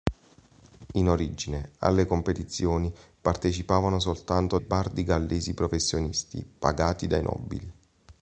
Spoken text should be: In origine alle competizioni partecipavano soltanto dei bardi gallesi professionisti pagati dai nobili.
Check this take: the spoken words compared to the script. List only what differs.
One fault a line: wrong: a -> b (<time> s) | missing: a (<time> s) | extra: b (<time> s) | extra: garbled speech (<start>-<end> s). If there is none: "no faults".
missing: dei (4.6 s)